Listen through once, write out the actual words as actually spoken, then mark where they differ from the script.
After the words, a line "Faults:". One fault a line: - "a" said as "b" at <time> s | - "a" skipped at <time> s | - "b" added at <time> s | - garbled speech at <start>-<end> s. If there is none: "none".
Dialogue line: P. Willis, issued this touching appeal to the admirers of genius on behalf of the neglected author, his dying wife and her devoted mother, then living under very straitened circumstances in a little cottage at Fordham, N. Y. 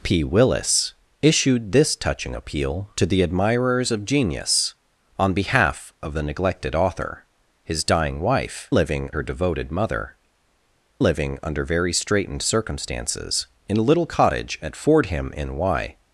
P. Willis, issued this touching appeal to the admirers of genius on behalf of the neglected author, his dying wife living her devoted mother, living under very straitened circumstances in a little cottage at Fordham, N. Y.
Faults:
- "and" said as "living" at 8.7 s
- "then" skipped at 10.2 s